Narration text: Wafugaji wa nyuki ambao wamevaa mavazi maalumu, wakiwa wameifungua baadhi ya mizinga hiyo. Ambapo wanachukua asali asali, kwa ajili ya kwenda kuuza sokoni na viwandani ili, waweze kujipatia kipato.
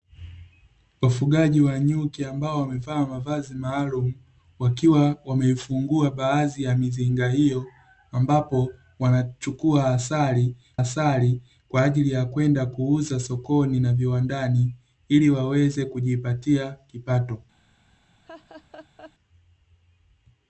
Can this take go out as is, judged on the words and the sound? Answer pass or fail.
fail